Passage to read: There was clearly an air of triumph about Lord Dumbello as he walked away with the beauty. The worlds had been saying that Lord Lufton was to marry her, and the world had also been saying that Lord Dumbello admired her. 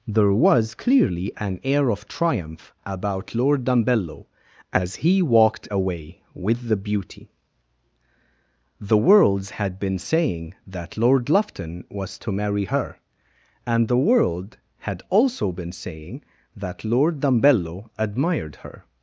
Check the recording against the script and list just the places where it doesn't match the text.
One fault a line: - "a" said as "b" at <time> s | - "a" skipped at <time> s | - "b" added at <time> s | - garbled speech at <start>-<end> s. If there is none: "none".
none